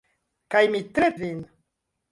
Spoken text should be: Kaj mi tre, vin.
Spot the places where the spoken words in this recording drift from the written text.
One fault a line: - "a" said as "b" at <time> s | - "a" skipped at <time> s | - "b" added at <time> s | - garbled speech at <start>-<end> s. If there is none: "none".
none